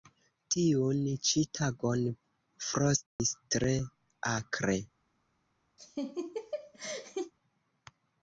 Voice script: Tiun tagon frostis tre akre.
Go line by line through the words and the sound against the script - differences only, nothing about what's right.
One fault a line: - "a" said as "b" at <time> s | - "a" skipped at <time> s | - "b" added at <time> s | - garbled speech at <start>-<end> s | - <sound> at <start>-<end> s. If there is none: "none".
- "ĉi" added at 1.3 s
- dropout at 3.1-3.2 s
- laugh at 5.8-7.3 s